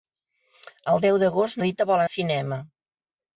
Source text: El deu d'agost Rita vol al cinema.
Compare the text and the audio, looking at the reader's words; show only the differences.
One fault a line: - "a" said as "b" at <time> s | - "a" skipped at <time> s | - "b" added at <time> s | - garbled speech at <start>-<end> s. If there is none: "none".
none